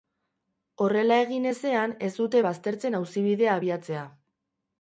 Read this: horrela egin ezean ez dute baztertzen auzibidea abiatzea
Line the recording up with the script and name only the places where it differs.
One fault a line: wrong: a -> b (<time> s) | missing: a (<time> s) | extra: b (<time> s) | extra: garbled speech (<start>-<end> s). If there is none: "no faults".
no faults